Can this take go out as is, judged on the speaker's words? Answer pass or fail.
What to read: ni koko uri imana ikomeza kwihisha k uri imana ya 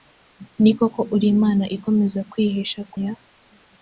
fail